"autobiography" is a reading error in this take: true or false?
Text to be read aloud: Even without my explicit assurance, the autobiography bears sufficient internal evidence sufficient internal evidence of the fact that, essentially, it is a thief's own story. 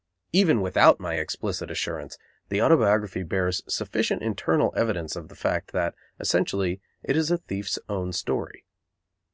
false